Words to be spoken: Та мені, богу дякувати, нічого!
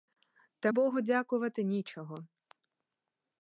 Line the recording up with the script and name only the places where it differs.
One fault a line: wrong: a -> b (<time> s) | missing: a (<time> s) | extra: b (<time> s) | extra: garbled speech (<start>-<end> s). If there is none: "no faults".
missing: мені (0.7 s)